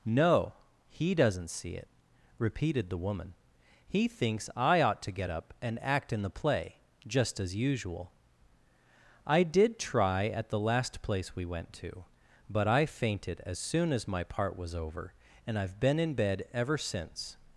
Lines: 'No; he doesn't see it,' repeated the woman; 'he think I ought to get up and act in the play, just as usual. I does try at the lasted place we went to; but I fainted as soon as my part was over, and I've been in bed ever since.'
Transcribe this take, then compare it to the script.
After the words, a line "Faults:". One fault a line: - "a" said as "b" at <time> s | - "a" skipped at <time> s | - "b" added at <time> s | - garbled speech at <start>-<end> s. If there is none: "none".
'No; he doesn't see it,' repeated the woman; 'he thinks I ought to get up and act in the play, just as usual. I did try at the last place we went to; but I fainted as soon as my part was over, and I've been in bed ever since.'
Faults:
- "think" said as "thinks" at 4.1 s
- "does" said as "did" at 9.4 s
- "lasted" said as "last" at 10.6 s